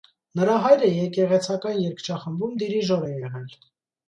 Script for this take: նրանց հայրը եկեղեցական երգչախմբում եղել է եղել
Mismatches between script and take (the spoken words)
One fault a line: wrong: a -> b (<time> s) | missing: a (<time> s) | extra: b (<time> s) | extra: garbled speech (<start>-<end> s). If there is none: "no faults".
wrong: նրանց -> նրա (0.4 s)
wrong: եղել -> դիրիժոր (2.6 s)